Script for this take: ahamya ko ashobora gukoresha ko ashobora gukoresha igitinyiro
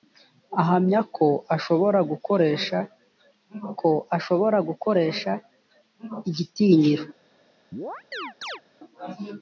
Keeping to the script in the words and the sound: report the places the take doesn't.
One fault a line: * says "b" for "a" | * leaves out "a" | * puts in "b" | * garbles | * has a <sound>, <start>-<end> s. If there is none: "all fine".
* has a chirp, 7.7-8.6 s